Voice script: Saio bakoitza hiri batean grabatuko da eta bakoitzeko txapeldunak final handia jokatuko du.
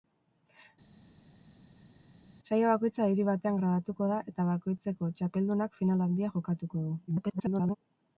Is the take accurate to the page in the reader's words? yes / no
no